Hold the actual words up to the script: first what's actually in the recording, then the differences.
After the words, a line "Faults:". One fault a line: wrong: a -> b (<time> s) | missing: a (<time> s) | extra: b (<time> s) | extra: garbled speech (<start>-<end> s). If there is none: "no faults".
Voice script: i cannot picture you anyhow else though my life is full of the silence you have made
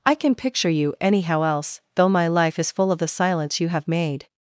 i can picture you anyhow else though my life is full of the silence you have made
Faults:
wrong: cannot -> can (0.1 s)